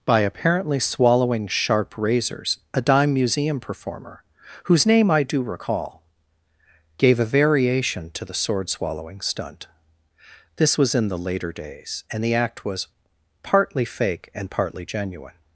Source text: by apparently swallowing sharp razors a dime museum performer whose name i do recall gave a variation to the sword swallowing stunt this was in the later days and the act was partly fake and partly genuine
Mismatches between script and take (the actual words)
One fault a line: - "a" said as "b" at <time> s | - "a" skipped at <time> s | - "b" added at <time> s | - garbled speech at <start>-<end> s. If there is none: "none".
none